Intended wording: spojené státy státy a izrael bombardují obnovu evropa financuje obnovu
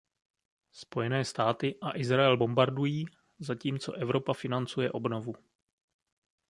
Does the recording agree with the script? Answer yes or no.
no